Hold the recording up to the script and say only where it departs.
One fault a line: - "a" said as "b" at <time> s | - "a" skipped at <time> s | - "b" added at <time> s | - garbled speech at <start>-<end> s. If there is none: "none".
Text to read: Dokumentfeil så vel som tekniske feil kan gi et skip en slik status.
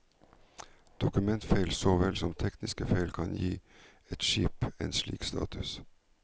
none